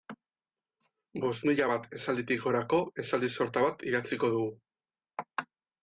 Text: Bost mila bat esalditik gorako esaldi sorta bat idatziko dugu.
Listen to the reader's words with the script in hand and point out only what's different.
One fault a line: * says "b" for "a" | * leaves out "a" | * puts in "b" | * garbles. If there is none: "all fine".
all fine